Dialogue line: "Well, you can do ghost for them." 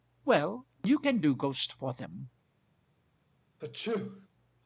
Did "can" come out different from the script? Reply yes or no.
no